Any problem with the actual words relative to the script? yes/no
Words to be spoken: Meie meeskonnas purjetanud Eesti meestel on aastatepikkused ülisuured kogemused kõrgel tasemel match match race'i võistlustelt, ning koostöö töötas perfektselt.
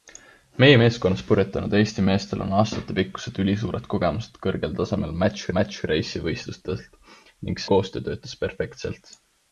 no